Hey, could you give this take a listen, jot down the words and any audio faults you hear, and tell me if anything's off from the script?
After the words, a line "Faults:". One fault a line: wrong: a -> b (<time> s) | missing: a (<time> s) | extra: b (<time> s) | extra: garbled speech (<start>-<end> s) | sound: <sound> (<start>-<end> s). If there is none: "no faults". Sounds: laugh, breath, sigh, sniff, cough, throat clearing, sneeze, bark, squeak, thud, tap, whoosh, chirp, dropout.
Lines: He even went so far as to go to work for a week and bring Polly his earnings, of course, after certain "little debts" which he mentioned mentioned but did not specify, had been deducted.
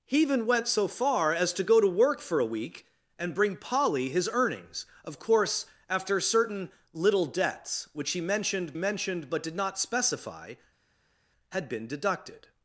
He even went so far as to go to work for a week and bring Polly his earnings, of course, after certain "little debts" which he mentioned mentioned but did not specify, had been deducted.
Faults:
no faults